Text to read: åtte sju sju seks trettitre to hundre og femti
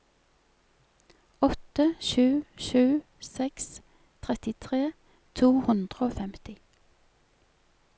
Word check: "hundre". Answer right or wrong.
right